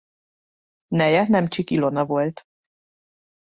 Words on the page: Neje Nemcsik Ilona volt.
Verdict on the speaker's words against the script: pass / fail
pass